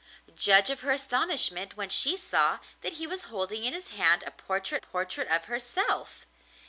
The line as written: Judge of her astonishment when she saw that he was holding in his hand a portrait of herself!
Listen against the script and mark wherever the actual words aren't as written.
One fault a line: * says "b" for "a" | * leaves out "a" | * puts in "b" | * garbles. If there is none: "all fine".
* puts in "portrait"